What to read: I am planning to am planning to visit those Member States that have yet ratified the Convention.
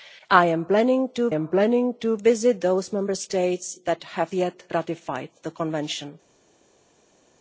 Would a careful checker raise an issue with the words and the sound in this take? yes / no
no